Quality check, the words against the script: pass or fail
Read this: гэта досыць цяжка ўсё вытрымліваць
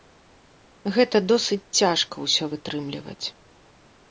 pass